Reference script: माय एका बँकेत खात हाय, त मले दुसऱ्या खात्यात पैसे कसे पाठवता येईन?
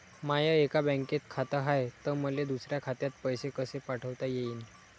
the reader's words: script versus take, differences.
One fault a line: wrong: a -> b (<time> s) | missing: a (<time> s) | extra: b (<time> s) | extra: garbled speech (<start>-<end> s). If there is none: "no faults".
no faults